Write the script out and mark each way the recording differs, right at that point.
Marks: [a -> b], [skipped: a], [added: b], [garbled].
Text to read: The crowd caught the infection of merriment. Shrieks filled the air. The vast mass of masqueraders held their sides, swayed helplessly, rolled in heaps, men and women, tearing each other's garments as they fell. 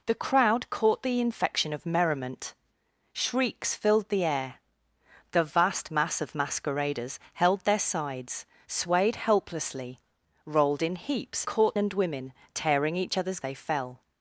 The crowd caught the infection of merriment. Shrieks filled the air. The vast mass of masqueraders held their sides, swayed helplessly, rolled in heaps, [men -> caught] and women, tearing each other's [skipped: garments as] they fell.